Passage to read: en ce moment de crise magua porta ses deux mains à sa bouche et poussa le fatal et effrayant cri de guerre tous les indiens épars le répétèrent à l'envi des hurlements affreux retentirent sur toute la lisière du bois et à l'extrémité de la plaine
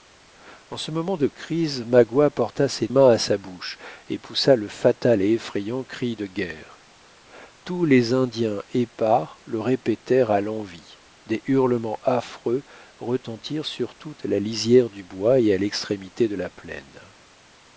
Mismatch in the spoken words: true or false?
true